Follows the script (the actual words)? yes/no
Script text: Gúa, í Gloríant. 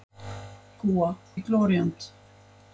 yes